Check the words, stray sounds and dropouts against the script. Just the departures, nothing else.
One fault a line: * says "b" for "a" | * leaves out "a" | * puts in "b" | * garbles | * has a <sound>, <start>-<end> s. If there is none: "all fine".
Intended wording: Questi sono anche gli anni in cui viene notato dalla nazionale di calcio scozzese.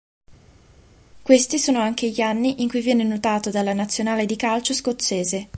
all fine